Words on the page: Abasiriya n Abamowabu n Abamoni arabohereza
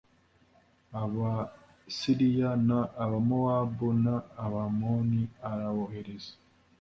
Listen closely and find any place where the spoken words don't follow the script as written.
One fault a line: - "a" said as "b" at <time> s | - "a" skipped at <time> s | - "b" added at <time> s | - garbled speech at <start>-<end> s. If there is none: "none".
none